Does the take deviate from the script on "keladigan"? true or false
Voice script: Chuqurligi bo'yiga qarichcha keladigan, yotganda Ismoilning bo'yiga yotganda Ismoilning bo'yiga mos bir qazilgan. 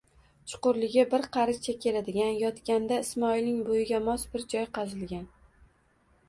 false